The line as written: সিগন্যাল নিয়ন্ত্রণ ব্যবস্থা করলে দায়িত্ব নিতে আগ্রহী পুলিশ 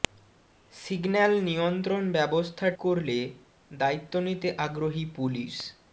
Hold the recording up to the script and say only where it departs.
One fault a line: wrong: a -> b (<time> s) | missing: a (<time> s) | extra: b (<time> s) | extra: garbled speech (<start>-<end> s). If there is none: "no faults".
no faults